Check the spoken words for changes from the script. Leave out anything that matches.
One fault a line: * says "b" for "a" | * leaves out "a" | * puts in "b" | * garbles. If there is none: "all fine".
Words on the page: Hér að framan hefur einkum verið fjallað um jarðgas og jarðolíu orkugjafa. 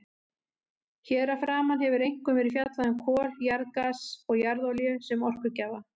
* puts in "kol"
* puts in "sem"